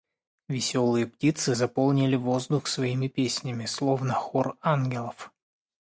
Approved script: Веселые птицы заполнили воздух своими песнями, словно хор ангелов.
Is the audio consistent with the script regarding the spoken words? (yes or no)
yes